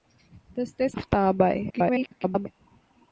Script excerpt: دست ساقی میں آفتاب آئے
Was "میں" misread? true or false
true